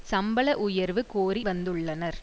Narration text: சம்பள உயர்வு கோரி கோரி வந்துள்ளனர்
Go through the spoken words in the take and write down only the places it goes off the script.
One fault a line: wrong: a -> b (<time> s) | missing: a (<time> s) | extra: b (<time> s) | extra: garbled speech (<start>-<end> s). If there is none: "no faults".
missing: கோரி (1.4 s)